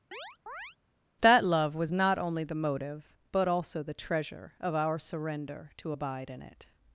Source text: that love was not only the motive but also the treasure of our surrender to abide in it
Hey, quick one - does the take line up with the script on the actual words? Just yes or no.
yes